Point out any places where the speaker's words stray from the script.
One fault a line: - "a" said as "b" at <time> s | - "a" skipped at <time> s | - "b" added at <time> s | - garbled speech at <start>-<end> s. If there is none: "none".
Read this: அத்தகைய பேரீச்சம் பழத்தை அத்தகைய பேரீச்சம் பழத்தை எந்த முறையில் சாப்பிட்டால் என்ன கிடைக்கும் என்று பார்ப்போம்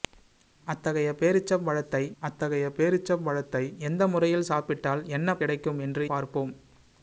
none